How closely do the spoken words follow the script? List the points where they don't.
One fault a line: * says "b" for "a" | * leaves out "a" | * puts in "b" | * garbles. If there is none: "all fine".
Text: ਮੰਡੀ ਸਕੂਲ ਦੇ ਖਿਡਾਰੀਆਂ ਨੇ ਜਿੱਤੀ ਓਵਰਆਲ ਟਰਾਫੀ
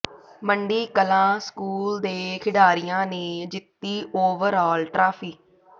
* puts in "ਕਲਾਂ"